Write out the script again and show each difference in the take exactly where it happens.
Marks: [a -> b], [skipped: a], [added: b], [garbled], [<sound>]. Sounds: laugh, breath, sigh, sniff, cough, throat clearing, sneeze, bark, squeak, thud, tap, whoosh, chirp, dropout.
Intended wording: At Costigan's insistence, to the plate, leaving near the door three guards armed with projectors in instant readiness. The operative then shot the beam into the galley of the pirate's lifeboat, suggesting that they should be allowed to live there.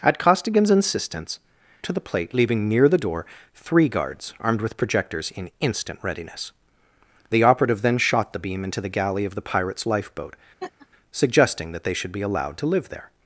At Costigan's insistence, to the plate, leaving near the door three guards armed with projectors in instant readiness. The operative then shot the beam into the galley of the pirate's lifeboat, [laugh] suggesting that they should be allowed to live there.